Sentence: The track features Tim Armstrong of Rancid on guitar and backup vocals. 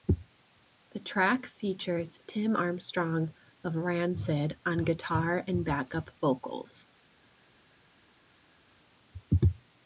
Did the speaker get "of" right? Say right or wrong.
right